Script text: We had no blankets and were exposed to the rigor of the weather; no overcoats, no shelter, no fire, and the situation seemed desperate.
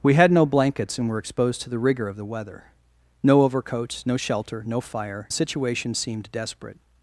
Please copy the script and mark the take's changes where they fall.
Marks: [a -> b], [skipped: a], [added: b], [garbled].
We had no blankets and were exposed to the rigor of the weather; no overcoats, no shelter, no fire, [skipped: and] the situation seemed desperate.